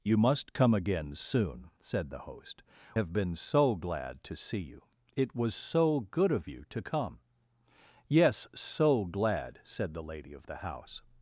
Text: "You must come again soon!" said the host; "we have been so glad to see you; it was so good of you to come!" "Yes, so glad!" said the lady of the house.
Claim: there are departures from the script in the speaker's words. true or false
true